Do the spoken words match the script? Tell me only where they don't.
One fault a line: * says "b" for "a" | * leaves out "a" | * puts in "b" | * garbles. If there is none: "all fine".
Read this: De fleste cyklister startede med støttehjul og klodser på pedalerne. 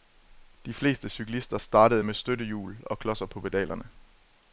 all fine